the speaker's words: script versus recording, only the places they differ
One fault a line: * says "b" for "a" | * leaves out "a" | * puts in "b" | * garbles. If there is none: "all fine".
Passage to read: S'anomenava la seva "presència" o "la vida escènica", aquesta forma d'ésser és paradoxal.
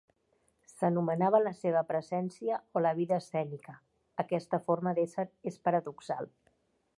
all fine